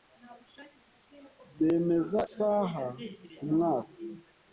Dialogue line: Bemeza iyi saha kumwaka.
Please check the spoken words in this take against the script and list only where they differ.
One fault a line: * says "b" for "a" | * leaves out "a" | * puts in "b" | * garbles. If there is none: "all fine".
* leaves out "iyi"